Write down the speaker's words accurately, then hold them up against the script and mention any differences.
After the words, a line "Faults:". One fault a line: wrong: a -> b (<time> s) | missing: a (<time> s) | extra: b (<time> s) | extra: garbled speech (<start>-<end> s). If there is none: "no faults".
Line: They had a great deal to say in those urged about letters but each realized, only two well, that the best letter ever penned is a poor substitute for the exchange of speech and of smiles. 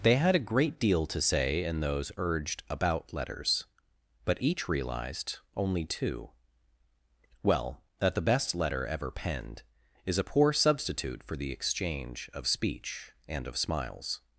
They had a great deal to say in those urged about letters but each realized, only two well, that the best letter ever penned is a poor substitute for the exchange of speech and of smiles.
Faults:
no faults